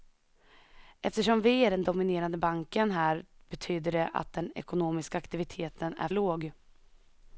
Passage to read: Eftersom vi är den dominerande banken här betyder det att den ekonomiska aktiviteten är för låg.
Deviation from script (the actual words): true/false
true